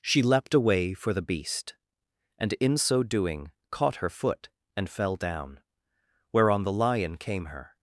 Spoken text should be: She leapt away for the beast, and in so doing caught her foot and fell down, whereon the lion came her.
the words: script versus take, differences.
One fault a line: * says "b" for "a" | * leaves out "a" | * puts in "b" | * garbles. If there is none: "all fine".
all fine